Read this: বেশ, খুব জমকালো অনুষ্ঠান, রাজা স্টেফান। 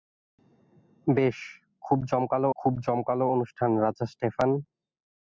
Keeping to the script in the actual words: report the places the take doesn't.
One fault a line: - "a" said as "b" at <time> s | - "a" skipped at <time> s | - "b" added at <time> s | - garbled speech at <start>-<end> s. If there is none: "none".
- "খুব জমকালো" added at 2.5 s